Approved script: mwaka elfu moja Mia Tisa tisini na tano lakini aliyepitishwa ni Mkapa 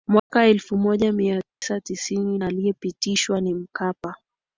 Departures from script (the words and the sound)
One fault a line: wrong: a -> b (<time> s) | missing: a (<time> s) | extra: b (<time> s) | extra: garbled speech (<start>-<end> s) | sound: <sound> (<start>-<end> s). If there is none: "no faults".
sound: dropout (0.2-0.3 s)
sound: dropout (1.5-1.6 s)
missing: na tano lakini (2.4 s)